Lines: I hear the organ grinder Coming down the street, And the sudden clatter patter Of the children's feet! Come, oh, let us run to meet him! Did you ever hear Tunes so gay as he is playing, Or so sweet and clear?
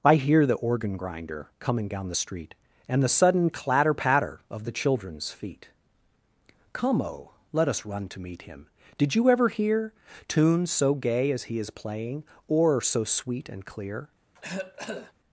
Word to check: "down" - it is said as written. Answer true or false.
true